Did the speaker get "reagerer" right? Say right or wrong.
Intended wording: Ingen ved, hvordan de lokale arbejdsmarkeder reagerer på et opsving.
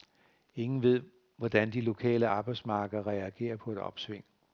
right